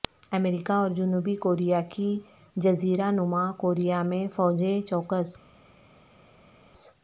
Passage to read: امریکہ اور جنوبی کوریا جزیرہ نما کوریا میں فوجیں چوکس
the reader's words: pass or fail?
fail